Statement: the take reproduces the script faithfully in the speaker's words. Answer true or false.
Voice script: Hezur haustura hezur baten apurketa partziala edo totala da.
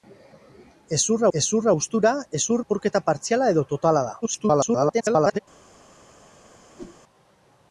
false